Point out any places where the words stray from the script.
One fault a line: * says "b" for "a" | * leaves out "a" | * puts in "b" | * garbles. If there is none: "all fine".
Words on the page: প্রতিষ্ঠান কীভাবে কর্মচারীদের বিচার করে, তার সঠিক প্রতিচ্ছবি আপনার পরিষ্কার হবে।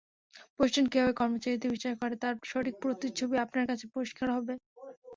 * puts in "কাছে"